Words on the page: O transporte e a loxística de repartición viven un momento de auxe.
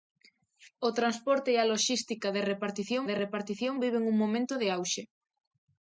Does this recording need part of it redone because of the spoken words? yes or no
yes